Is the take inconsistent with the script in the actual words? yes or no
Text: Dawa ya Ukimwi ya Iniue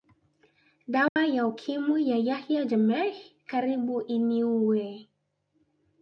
yes